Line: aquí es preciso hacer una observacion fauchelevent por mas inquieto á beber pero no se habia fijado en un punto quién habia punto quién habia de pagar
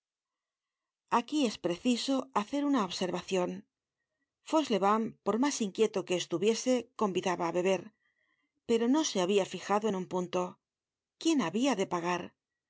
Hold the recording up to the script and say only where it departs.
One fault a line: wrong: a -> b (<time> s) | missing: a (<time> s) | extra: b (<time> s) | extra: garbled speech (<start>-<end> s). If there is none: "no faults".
extra: que estuviese convidaba (6.1 s)
missing: punto quién habia (11.7 s)